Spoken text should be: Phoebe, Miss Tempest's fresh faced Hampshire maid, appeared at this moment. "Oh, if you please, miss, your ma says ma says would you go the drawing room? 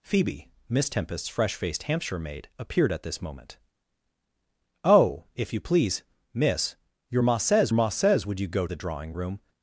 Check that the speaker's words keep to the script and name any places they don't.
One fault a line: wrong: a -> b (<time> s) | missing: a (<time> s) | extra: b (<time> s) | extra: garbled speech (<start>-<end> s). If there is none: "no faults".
no faults